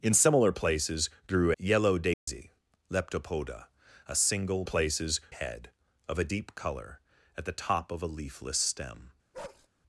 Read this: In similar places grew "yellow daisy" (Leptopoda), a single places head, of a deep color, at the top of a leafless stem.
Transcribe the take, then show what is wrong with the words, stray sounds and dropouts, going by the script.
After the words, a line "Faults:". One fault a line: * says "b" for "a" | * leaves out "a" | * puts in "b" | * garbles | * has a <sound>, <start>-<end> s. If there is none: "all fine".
In similar places grew "yellow daisy" (Leptopoda), a single places head, of a deep color, at the top of a leafless stem.
Faults:
* has a dropout, 2.1-2.3 s
* has a bark, 9.3-9.7 s